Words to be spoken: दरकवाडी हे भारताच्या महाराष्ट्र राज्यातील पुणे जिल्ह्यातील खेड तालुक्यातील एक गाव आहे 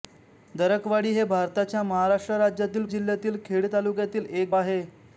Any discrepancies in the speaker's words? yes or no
yes